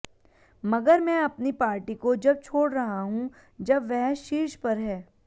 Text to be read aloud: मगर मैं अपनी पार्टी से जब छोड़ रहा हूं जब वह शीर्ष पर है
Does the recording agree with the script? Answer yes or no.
no